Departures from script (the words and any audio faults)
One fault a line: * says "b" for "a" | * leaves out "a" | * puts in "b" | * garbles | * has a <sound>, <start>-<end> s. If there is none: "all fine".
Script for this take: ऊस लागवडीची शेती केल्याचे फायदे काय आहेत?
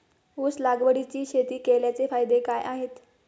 all fine